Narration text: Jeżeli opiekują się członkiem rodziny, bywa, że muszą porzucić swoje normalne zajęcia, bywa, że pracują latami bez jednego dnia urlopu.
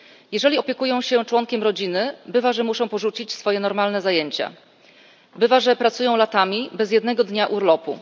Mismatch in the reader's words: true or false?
false